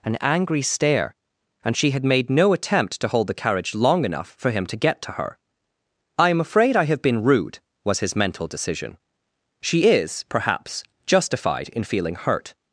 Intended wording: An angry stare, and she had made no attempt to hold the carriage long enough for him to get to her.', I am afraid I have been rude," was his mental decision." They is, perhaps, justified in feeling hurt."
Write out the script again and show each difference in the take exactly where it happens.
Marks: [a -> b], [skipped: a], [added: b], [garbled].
An angry stare, and she had made no attempt to hold the carriage long enough for him to get to her.', I am afraid I have been rude," was his mental decision." [They -> She] is, perhaps, justified in feeling hurt."